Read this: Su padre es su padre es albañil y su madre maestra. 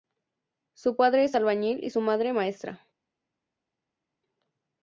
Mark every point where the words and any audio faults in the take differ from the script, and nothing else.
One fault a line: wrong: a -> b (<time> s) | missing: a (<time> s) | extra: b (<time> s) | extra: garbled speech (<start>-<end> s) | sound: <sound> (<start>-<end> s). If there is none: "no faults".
missing: su padre es (1.4 s)